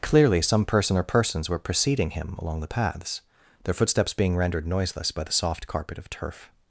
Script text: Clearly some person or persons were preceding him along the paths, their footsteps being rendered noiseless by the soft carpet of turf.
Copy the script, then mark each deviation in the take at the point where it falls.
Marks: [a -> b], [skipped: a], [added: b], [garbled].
Clearly some person or persons were preceding him along the paths, their footsteps being rendered noiseless by the soft carpet of turf.